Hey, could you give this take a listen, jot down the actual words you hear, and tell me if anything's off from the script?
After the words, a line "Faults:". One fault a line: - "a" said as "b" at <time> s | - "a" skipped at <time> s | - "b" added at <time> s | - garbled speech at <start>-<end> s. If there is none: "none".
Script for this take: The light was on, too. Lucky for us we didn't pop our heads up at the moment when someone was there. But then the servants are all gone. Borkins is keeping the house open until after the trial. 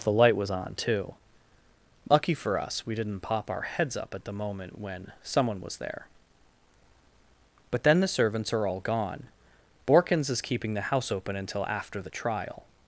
The light was on, too. Lucky for us we didn't pop our heads up at the moment when someone was there. But then the servants are all gone. Borkins is keeping the house open until after the trial.
Faults:
none